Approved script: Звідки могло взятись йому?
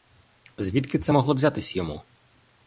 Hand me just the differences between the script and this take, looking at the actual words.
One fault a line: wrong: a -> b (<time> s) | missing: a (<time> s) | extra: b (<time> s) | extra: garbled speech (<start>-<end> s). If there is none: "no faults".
extra: це (1.0 s)